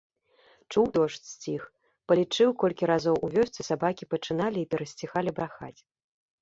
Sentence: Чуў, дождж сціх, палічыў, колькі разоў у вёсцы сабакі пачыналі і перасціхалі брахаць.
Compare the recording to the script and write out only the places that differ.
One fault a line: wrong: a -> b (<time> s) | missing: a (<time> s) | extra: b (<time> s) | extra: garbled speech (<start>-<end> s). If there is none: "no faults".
no faults